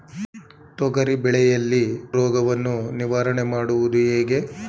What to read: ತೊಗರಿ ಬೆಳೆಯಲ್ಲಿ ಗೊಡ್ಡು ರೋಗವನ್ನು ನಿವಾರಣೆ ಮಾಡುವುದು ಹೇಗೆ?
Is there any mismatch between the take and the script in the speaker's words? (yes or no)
yes